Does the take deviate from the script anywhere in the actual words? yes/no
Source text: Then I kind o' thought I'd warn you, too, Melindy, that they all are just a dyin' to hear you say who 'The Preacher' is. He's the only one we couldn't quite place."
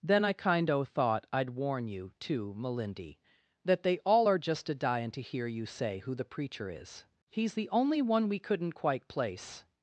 no